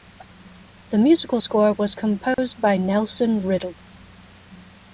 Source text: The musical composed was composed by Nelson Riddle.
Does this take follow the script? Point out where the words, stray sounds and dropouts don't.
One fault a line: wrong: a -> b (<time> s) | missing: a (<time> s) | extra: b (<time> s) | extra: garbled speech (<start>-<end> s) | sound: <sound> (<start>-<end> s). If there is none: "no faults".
wrong: composed -> score (1.4 s)
sound: dropout (2.3-2.4 s)